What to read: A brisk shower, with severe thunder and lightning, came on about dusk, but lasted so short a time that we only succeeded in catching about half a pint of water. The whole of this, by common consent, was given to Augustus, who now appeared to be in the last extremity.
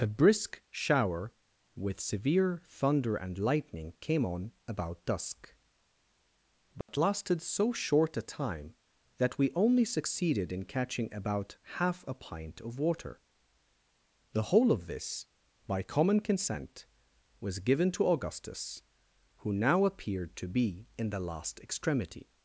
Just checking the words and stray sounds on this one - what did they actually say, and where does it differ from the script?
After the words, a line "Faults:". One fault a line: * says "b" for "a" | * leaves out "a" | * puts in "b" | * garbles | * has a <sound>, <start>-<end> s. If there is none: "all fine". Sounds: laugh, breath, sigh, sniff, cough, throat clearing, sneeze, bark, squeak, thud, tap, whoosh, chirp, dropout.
A brisk shower, with severe thunder and lightning, came on about dusk, but lasted so short a time that we only succeeded in catching about half a pint of water. The whole of this, by common consent, was given to Augustus, who now appeared to be in the last extremity.
Faults:
* has a dropout, 6.8-6.9 s